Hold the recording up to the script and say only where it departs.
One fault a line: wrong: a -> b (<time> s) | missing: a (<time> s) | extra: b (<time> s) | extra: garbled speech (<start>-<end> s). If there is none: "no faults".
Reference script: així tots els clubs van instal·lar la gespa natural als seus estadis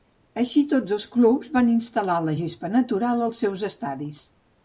no faults